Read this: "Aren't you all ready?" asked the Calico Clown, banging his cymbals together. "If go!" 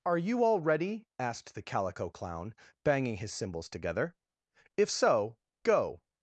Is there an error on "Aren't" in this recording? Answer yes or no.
yes